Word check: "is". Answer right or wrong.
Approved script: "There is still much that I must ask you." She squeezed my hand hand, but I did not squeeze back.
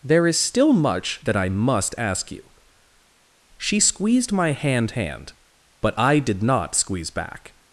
right